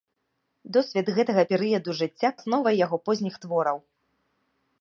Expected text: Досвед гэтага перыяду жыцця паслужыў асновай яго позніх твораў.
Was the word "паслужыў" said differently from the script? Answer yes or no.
yes